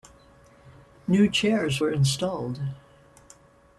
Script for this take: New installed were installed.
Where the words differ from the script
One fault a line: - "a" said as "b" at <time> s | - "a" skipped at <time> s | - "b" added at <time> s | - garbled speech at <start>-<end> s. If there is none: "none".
- "installed" said as "chairs" at 1.3 s